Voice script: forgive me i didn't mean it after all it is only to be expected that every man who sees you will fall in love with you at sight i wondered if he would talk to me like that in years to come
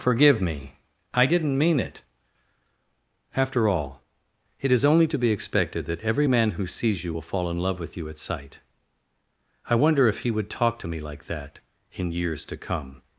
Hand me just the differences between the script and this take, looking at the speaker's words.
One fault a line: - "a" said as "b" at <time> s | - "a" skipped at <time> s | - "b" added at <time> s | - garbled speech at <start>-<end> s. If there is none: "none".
- "wondered" said as "wonder" at 9.7 s